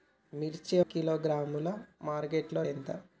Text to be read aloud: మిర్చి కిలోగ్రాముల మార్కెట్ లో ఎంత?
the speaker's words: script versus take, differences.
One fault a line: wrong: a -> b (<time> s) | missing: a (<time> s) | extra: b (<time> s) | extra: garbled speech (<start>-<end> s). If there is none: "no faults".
no faults